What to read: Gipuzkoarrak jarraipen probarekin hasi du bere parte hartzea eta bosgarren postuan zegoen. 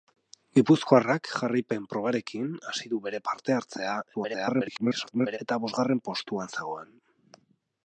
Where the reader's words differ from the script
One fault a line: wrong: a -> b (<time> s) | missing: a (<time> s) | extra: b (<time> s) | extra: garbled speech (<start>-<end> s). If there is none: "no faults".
extra: garbled speech (4.1-5.4 s)